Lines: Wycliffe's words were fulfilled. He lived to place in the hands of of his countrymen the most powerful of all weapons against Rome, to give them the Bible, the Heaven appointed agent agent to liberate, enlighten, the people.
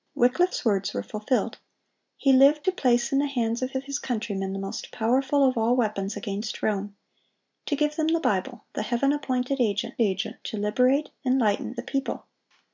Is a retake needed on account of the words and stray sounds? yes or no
no